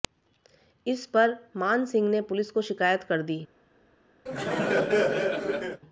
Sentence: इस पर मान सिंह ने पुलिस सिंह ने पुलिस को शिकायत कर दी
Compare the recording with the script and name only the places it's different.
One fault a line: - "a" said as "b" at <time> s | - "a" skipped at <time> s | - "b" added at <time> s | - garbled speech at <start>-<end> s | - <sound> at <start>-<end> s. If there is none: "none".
- "सिंह ने पुलिस" skipped at 2.5 s
- laugh at 4.3-5.8 s